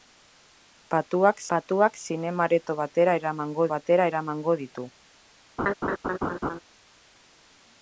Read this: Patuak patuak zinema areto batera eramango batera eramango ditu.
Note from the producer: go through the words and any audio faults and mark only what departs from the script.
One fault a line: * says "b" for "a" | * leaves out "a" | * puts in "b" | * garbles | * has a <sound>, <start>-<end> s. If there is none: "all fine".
* has a laugh, 5.6-6.6 s